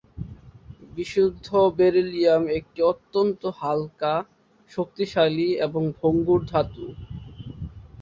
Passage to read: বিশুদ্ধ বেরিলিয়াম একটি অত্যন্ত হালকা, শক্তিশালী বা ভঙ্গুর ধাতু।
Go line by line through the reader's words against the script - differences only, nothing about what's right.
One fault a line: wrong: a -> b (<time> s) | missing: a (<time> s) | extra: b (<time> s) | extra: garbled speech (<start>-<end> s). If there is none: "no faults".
wrong: বা -> এবং (5.7 s)